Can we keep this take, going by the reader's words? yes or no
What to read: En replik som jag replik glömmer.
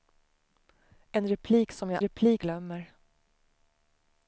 yes